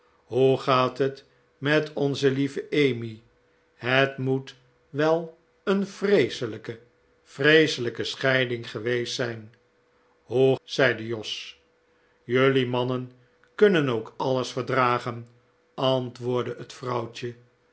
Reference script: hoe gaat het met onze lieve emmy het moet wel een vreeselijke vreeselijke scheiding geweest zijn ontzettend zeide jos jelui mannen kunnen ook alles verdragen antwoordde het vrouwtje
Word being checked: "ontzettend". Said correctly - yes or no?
no